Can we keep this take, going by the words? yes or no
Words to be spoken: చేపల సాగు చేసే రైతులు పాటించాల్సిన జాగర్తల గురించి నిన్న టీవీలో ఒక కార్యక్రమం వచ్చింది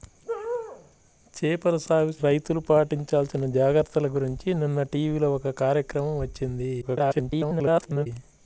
no